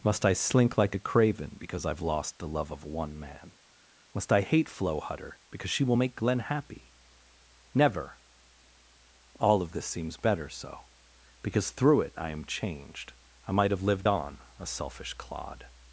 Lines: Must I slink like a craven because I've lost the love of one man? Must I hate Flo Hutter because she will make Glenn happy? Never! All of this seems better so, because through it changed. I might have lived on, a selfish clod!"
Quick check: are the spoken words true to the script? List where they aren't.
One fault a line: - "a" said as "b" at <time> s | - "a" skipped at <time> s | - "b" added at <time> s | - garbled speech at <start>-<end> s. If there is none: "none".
- "I am" added at 12.1 s